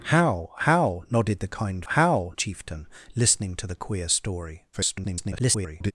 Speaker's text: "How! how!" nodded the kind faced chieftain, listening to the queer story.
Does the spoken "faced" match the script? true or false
false